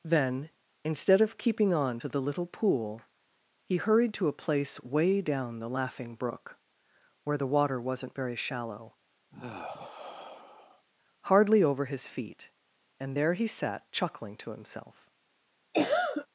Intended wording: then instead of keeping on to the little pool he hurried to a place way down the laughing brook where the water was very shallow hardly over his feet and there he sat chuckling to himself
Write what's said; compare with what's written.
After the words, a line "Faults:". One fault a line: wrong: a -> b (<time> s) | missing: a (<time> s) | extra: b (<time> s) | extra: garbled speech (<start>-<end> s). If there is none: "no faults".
then instead of keeping on to the little pool he hurried to a place way down the laughing brook where the water wasn't very shallow hardly over his feet and there he sat chuckling to himself
Faults:
wrong: was -> wasn't (7.8 s)